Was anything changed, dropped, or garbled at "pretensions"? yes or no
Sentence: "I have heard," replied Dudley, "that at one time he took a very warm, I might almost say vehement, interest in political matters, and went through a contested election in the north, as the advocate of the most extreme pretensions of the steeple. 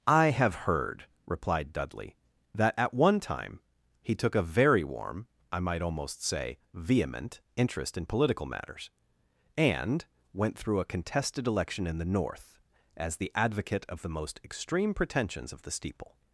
no